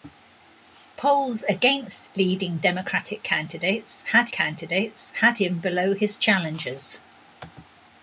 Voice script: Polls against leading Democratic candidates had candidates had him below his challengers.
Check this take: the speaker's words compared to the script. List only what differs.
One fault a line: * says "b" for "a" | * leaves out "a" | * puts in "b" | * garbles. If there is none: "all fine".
all fine